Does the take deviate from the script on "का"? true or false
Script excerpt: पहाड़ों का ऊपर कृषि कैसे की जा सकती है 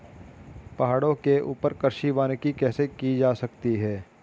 true